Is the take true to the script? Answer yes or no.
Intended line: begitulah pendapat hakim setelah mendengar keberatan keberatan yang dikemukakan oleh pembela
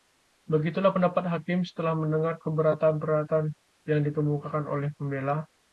yes